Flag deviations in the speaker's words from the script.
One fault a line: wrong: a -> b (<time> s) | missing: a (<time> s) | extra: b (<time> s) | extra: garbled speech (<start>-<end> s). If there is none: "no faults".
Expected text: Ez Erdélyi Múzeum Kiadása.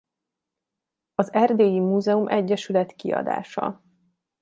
wrong: Ez -> Az (1.1 s)
extra: Egyesület (2.3 s)